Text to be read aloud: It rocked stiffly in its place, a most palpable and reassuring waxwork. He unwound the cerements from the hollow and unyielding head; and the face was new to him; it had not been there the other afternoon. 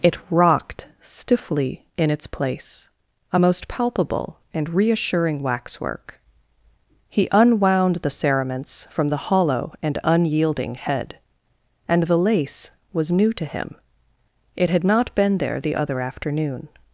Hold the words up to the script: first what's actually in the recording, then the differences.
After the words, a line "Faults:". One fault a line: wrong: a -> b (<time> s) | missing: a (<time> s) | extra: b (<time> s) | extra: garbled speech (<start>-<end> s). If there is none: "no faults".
It rocked stiffly in its place, a most palpable and reassuring waxwork. He unwound the cerements from the hollow and unyielding head; and the lace was new to him; it had not been there the other afternoon.
Faults:
wrong: face -> lace (12.2 s)